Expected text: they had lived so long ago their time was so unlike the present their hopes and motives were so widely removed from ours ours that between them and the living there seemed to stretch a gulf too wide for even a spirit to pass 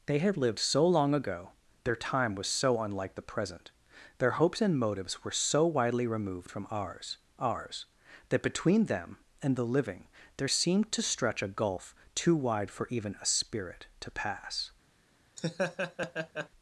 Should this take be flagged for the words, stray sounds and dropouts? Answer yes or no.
yes